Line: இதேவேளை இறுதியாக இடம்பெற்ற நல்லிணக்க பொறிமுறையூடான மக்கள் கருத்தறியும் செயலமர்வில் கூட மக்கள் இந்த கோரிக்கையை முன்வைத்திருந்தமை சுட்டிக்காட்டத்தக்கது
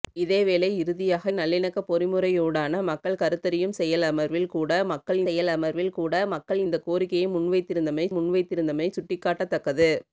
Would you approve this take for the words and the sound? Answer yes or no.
no